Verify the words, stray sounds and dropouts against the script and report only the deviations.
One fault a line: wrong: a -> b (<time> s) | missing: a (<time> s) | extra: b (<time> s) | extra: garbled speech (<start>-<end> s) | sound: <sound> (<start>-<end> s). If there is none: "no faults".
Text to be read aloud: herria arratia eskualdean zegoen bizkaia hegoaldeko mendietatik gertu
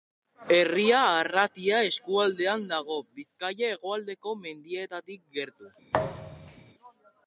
wrong: zegoen -> dago (2.7 s)
sound: thud (5.9-6.7 s)